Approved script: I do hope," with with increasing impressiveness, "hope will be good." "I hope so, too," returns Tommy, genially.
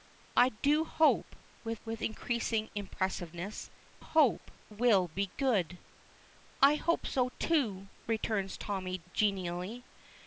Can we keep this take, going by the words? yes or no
yes